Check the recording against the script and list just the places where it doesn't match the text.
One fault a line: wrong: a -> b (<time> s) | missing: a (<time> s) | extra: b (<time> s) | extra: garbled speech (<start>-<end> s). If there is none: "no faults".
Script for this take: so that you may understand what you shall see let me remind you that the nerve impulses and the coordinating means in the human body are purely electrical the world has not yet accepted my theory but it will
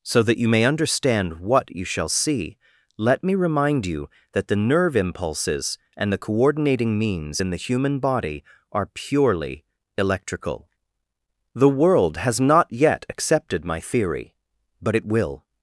no faults